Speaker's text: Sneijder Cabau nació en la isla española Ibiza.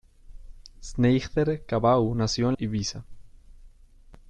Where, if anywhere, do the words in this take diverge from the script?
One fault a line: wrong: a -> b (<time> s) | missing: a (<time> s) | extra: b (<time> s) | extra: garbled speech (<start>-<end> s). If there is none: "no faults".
missing: la isla española (2.6 s)